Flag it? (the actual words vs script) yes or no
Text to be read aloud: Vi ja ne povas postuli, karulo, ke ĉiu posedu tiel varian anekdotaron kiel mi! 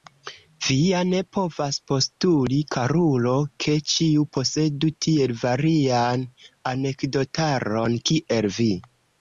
yes